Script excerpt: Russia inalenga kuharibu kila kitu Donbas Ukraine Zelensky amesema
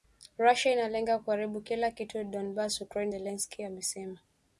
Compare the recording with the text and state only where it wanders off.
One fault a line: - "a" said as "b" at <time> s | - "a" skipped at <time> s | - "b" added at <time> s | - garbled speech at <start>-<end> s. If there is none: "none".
none